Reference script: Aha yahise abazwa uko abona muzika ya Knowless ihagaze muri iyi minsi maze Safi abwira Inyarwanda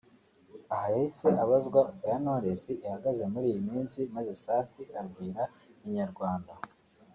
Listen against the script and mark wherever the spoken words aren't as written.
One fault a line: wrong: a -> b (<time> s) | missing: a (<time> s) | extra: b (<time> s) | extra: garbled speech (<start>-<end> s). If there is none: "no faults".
missing: uko abona muzika (1.8 s)